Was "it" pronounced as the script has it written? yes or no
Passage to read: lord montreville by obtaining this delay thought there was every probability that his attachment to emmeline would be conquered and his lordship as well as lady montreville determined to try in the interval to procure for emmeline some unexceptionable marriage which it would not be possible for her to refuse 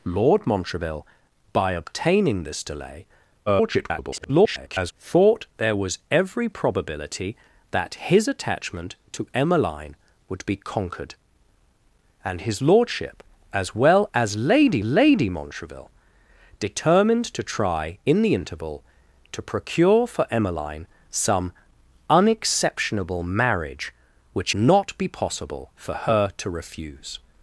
no